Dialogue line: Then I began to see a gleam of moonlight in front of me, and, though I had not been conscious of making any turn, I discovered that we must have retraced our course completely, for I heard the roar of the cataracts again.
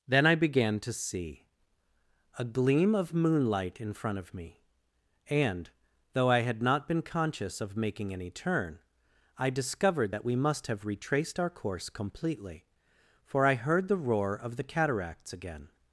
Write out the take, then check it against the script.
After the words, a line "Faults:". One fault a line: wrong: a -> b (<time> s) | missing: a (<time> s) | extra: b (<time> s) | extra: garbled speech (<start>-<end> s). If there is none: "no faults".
Then I began to see a gleam of moonlight in front of me, and, though I had not been conscious of making any turn, I discovered that we must have retraced our course completely, for I heard the roar of the cataracts again.
Faults:
no faults